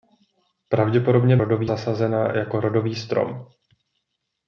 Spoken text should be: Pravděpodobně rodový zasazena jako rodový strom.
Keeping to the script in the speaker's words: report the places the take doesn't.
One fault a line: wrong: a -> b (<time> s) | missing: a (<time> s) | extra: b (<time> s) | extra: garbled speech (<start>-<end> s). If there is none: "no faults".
no faults